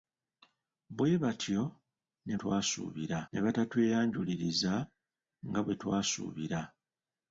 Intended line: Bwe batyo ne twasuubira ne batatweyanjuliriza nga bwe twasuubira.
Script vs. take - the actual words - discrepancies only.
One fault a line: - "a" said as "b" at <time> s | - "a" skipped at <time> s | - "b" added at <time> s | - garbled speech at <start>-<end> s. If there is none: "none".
none